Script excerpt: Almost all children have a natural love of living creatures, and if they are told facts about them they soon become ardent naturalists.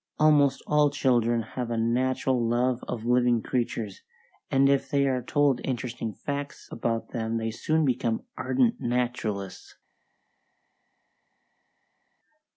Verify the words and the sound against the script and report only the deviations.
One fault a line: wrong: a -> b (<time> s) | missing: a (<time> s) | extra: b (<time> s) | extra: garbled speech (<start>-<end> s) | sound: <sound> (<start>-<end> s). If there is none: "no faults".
extra: interesting (5.6 s)